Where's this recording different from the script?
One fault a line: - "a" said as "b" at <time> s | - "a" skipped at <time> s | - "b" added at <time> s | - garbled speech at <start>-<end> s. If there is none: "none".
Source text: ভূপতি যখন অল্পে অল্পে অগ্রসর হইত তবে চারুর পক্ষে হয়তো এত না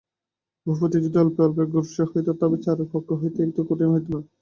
- "যখন" said as "যদি" at 1.0 s
- "কঠিন হইত" added at 3.7 s